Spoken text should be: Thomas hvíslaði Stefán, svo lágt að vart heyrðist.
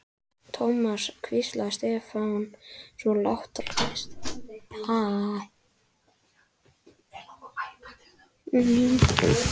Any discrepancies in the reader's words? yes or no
yes